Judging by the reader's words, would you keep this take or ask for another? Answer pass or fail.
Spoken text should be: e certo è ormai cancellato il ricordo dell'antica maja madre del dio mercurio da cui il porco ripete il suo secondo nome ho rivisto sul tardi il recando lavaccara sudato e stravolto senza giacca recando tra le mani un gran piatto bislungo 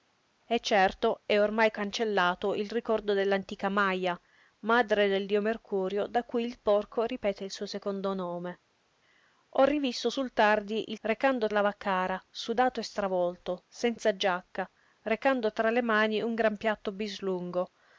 pass